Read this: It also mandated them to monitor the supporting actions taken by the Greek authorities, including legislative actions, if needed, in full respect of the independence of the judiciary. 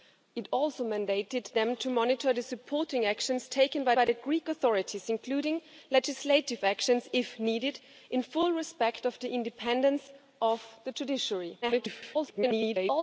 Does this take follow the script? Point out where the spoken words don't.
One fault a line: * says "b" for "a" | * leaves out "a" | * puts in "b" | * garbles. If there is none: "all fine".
* puts in "by"
* garbles